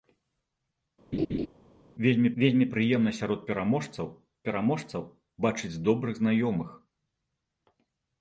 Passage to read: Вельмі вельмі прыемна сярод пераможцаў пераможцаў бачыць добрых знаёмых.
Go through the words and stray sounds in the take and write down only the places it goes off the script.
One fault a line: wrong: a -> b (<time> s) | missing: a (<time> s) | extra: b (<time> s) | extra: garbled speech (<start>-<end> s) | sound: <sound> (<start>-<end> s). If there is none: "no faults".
sound: laugh (1.1-1.5 s)